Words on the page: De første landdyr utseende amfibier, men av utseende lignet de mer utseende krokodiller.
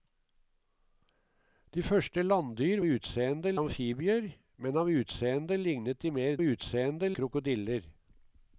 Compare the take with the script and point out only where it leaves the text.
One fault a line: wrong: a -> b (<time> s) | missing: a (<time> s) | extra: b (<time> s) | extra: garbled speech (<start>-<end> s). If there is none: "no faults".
no faults